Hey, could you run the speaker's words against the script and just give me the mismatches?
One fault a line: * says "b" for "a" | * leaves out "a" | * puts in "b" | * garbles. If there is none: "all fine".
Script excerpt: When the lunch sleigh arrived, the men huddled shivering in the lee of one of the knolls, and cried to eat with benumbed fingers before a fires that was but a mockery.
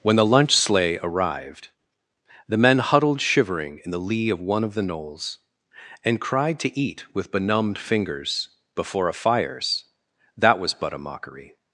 all fine